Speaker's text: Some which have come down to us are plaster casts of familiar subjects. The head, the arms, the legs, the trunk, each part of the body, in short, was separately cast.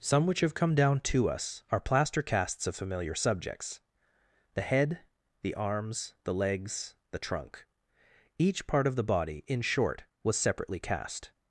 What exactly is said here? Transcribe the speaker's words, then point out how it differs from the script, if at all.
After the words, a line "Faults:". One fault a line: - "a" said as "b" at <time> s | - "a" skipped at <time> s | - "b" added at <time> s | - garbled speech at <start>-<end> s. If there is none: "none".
Some which have come down to us are plaster casts of familiar subjects. The head, the arms, the legs, the trunk, each part of the body, in short, was separately cast.
Faults:
none